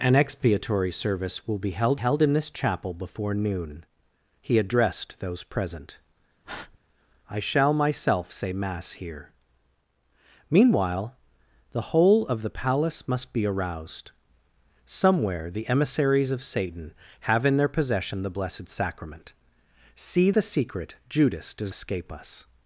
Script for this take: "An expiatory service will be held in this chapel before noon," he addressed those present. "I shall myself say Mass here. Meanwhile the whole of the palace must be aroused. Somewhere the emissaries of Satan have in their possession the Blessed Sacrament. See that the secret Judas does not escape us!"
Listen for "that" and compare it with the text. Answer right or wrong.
wrong